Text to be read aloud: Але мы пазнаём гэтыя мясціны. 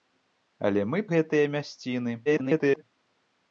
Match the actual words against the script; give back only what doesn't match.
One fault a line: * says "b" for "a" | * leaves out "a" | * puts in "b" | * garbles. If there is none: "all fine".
* leaves out "пазнаём"
* garbles